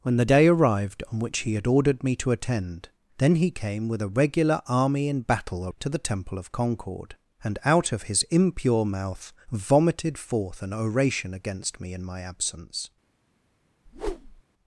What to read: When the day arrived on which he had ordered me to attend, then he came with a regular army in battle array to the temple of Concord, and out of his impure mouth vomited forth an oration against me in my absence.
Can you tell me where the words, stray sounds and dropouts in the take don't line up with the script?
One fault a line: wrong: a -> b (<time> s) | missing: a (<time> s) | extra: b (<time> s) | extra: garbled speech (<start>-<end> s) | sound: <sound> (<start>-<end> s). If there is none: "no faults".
missing: array (5.7 s)
sound: whoosh (13.9-14.4 s)